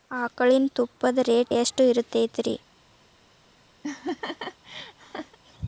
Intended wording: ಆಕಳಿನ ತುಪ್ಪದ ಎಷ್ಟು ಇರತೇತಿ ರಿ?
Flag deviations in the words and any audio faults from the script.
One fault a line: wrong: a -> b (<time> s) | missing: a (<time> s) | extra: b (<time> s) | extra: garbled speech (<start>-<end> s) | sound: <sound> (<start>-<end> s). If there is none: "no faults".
extra: ರೇಟ್ (1.2 s)
sound: laugh (3.8-5.4 s)